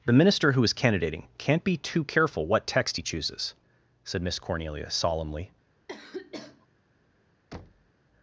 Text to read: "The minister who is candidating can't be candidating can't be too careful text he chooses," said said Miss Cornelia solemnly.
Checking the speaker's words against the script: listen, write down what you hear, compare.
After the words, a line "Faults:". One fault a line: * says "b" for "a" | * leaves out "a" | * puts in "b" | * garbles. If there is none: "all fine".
"The minister who is candidating can't be too careful what text he chooses," said Miss Cornelia solemnly.
Faults:
* leaves out "candidating can't be"
* puts in "what"
* leaves out "said"